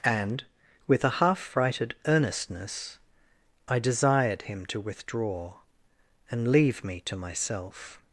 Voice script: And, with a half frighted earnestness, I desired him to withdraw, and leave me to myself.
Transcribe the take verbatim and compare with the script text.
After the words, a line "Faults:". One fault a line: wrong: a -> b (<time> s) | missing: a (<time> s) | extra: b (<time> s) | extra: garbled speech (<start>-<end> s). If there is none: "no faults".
And, with a half frighted earnestness, I desired him to withdraw, and leave me to myself.
Faults:
no faults